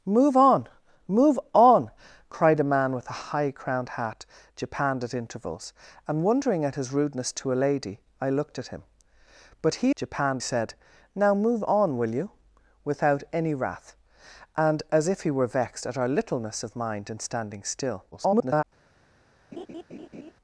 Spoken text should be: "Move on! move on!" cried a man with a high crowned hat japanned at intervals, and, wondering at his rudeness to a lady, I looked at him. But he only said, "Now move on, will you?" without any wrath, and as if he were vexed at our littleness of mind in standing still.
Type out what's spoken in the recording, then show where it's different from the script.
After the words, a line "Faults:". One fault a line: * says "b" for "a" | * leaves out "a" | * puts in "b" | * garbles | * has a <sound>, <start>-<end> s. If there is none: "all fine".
"Move on! move on!" cried a man with a high crowned hat japanned at intervals, and, wondering at his rudeness to a lady, I looked at him. But he japanned said, "Now move on, will you?" without any wrath, and as if he were vexed at our littleness of mind in standing still. [garbled]
Faults:
* says "japanned" for "only"
* garbles
* has a laugh, 19.5-20.3 s